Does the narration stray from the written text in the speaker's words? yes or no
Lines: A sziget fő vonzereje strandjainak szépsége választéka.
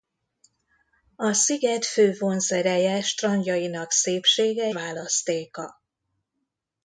no